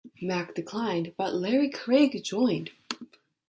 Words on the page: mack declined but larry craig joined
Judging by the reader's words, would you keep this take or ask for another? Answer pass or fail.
pass